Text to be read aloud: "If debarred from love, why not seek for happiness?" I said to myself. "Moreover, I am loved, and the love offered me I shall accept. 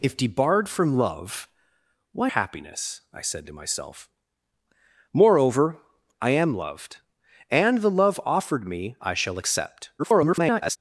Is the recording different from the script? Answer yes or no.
yes